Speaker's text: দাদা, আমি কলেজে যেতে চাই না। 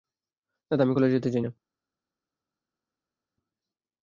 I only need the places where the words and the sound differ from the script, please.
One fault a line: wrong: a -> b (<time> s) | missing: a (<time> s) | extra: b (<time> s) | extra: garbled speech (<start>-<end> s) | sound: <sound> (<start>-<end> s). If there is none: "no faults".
no faults